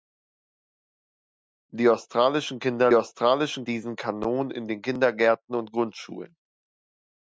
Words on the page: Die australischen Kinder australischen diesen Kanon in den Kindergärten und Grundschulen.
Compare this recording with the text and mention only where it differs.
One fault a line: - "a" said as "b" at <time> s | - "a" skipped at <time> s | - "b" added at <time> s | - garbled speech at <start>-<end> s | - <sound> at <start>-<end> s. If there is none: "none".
none